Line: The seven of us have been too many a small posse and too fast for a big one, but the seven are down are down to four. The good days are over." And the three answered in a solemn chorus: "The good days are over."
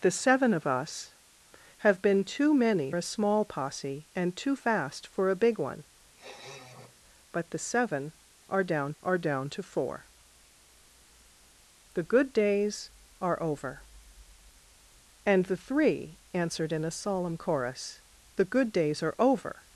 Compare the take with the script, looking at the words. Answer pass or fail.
pass